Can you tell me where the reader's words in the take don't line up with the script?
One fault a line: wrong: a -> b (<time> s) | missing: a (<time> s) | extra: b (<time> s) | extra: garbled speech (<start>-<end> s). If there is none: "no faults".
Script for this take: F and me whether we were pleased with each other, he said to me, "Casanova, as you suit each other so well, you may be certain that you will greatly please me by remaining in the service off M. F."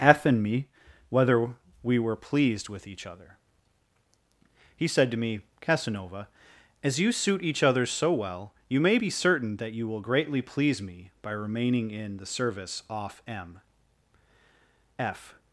no faults